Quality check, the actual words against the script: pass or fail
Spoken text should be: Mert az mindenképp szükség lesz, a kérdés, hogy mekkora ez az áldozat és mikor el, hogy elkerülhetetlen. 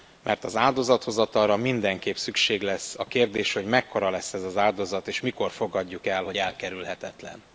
fail